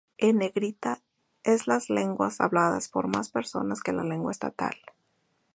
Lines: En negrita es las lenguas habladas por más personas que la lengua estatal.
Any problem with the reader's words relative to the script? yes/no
no